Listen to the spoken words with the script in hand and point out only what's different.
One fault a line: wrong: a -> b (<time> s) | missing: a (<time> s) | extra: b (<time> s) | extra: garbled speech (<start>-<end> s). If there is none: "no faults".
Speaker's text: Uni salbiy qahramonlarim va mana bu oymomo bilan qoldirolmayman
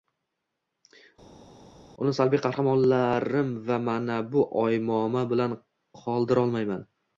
no faults